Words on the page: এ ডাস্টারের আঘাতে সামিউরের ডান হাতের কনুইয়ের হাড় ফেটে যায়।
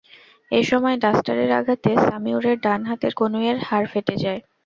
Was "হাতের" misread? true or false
false